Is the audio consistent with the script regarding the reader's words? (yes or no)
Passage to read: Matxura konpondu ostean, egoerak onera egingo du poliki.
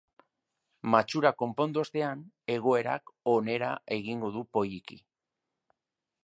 yes